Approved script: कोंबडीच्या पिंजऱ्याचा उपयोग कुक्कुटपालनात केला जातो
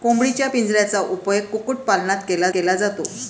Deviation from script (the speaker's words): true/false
true